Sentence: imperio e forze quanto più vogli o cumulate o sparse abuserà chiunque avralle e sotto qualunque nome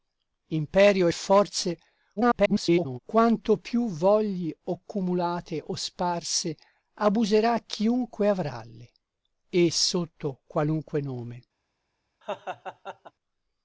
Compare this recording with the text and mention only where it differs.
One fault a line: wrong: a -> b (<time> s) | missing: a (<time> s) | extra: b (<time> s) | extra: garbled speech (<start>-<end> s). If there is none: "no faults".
extra: garbled speech (2.2-3.0 s)